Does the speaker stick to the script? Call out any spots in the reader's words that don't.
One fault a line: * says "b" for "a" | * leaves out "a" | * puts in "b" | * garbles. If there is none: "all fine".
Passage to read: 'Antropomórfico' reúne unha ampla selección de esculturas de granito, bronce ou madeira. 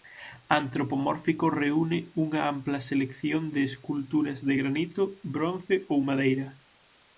all fine